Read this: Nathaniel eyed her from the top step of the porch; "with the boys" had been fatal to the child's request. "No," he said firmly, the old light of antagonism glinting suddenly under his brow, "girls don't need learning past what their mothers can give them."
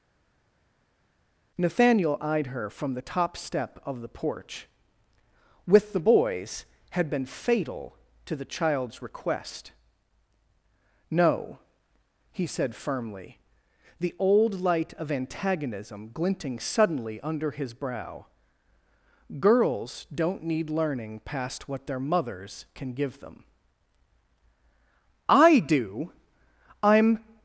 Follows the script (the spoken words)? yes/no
no